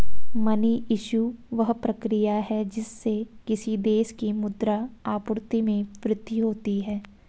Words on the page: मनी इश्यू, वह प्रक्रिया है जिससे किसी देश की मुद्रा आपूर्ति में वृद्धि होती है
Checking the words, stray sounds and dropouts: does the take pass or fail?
pass